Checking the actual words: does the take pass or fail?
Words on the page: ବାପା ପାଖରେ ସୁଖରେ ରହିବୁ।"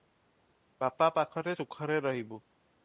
pass